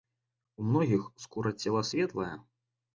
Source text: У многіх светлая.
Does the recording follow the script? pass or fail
fail